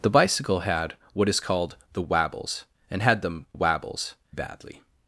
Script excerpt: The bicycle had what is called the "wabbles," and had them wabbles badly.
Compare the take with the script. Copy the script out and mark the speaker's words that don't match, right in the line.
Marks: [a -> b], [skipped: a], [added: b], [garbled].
The bicycle had what is called the "wabbles," and had them wabbles badly.